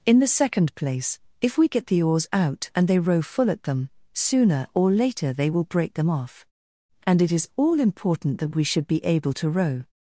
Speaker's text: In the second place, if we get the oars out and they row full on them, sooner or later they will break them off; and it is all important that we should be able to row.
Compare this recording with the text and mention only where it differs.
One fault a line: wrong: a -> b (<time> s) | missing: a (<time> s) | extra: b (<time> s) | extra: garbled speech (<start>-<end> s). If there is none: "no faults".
wrong: on -> at (3.5 s)